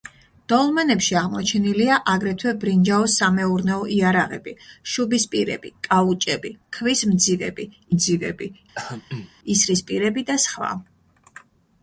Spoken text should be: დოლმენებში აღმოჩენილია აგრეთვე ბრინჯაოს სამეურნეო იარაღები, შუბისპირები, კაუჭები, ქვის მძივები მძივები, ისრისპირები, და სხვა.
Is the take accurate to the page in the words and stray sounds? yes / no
no